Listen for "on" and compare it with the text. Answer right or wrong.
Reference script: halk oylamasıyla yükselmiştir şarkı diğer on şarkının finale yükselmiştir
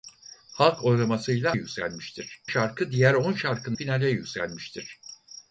right